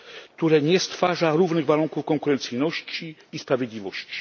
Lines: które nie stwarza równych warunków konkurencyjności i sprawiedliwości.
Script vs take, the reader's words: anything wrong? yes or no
no